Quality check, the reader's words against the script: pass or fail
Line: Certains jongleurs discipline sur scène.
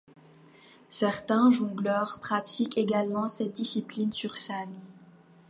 fail